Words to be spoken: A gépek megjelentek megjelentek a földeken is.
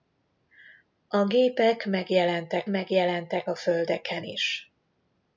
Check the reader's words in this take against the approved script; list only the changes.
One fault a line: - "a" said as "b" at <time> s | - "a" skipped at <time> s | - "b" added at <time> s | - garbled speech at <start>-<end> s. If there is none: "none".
none